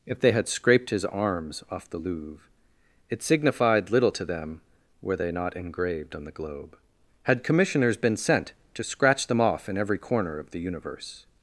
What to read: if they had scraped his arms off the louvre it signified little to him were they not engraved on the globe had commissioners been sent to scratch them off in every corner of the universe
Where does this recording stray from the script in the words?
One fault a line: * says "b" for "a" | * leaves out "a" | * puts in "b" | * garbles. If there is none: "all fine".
* says "them" for "him"